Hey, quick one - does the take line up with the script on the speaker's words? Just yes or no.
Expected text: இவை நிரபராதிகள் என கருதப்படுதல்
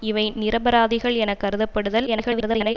no